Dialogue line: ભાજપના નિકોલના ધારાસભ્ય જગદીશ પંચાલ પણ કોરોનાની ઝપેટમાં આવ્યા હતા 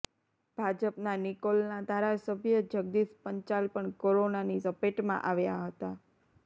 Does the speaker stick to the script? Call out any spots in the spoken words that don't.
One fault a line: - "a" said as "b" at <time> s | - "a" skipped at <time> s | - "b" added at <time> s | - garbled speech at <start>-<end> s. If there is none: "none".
none